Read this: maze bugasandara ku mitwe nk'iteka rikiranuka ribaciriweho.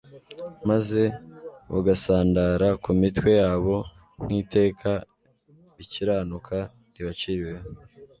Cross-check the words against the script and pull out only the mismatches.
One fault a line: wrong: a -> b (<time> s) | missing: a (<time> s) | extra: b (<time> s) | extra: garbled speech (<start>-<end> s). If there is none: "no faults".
extra: yabo (3.4 s)